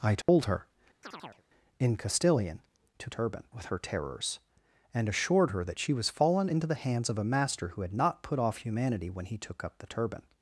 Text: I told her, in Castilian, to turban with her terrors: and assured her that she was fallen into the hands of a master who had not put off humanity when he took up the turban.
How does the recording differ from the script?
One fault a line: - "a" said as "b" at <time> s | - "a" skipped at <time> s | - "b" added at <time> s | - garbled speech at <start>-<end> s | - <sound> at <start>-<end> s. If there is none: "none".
- dropout at 0.2-0.3 s
- chirp at 1.0-1.4 s